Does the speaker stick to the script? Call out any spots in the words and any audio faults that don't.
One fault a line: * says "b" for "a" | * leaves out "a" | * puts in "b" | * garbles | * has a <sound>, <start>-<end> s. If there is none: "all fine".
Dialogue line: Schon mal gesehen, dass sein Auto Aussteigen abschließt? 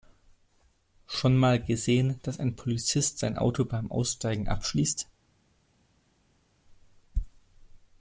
* puts in "ein Polizist"
* puts in "beim"